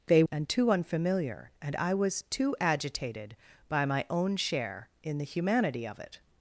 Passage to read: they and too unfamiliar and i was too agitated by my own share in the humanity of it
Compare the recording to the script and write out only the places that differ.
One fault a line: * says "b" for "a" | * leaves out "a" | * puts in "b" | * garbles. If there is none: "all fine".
all fine